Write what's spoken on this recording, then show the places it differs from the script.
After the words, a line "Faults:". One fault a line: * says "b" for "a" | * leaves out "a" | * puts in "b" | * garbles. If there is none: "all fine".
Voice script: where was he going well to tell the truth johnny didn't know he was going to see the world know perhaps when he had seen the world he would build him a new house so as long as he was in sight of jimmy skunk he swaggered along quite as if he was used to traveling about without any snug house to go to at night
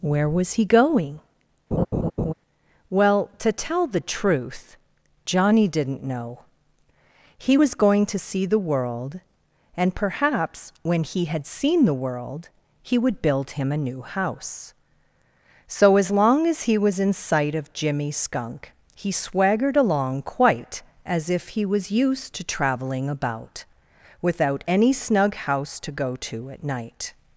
where was he going well to tell the truth johnny didn't know he was going to see the world and perhaps when he had seen the world he would build him a new house so as long as he was in sight of jimmy skunk he swaggered along quite as if he was used to traveling about without any snug house to go to at night
Faults:
* says "and" for "know"